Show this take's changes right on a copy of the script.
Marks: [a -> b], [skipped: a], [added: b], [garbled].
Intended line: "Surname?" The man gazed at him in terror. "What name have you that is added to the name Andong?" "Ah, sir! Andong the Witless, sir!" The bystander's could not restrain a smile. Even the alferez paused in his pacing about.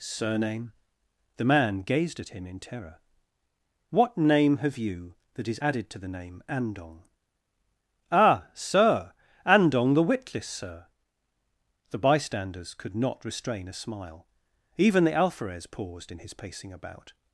"Surname?" The man gazed at him in terror. "What name have you that is added to the name Andong?" "Ah, sir! Andong the Witless, sir!" The bystander's could not restrain a smile. Even the alferez paused in his pacing about.